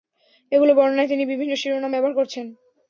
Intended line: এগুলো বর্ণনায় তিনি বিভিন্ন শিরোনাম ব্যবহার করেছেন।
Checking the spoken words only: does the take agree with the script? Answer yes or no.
yes